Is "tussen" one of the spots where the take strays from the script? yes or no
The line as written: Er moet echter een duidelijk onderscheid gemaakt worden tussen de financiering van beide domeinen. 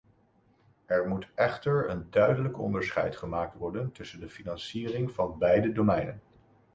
no